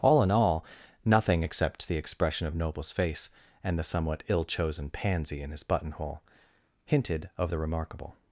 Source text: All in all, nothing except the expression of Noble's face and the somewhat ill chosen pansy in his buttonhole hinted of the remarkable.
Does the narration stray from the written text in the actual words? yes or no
no